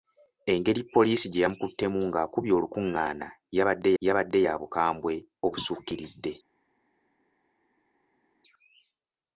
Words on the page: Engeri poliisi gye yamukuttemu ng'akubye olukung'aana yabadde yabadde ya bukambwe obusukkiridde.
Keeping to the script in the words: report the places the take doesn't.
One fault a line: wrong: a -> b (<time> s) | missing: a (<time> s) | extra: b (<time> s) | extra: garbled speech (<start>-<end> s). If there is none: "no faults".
no faults